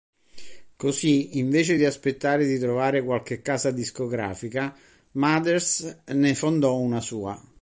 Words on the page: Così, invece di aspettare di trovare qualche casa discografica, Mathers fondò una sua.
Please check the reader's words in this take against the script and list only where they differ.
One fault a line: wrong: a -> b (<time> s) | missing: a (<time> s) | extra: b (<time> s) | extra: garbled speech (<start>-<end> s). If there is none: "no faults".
extra: ne (6.1 s)